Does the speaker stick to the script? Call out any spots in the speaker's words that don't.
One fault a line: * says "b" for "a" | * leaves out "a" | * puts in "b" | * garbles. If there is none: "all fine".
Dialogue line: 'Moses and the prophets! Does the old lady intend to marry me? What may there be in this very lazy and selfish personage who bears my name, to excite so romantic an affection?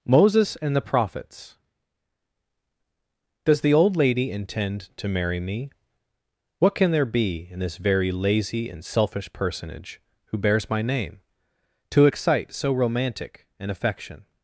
* says "can" for "may"